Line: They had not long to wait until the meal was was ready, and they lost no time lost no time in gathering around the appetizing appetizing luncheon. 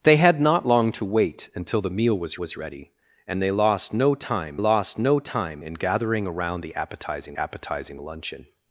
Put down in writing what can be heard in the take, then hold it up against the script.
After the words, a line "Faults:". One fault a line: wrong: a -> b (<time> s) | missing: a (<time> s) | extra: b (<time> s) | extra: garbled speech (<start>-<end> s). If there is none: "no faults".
They had not long to wait until the meal was was ready, and they lost no time lost no time in gathering around the appetizing appetizing luncheon.
Faults:
no faults